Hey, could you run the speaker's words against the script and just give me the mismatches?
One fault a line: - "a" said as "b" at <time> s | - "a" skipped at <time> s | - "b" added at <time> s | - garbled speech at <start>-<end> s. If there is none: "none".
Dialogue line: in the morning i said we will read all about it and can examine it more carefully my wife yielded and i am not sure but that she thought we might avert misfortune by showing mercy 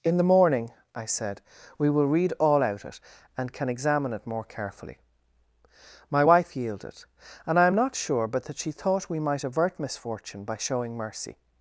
- "about" said as "out" at 2.6 s